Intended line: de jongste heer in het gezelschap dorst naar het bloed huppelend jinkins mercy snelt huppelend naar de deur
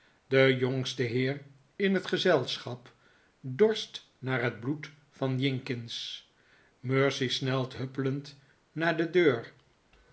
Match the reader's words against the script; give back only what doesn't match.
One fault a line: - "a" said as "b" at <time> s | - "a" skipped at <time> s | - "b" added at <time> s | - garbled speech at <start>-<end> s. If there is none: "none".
- "huppelend" said as "van" at 5.1 s